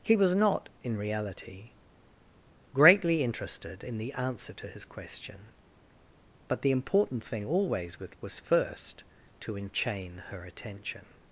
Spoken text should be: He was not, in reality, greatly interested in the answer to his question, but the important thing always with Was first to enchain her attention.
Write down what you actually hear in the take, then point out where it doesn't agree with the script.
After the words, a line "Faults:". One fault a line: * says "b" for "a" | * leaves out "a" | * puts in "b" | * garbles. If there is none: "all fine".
He was not, in reality, greatly interested in the answer to his question, but the important thing always with Was first to enchain her attention.
Faults:
all fine